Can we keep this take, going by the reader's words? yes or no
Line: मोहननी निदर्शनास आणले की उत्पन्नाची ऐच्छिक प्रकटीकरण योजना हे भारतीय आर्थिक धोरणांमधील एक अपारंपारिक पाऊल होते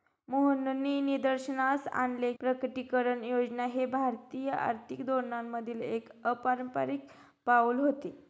no